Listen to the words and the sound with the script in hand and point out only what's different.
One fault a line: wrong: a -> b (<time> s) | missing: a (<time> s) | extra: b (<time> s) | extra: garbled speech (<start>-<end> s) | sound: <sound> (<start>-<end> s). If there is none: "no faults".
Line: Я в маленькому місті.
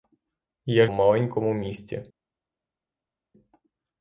no faults